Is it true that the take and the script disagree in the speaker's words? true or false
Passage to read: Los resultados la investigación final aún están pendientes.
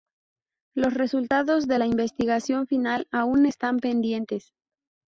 true